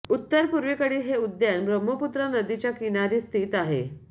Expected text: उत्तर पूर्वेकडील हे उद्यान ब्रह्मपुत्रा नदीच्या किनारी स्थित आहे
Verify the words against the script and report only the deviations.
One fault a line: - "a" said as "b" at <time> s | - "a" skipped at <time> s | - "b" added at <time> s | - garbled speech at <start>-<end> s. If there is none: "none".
none